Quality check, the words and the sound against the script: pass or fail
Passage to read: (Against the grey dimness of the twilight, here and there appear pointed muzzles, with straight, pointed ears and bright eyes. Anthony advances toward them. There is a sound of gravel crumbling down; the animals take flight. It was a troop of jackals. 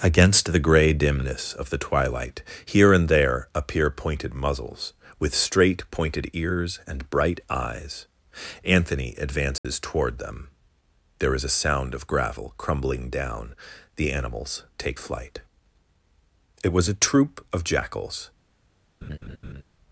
fail